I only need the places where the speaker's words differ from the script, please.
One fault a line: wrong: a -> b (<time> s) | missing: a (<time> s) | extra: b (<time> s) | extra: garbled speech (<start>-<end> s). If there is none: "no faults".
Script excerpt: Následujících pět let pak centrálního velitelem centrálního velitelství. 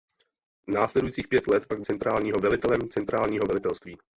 no faults